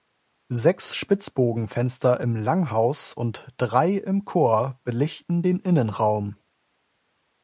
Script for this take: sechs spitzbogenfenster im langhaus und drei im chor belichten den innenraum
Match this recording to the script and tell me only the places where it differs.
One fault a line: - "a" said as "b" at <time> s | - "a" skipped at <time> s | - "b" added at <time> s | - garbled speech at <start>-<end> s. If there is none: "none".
none